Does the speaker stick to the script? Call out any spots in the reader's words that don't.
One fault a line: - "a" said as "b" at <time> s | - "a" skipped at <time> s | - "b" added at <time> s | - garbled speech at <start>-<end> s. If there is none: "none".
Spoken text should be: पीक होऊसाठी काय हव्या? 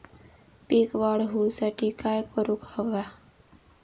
- "वाढ" added at 1.0 s
- "करूक" added at 2.4 s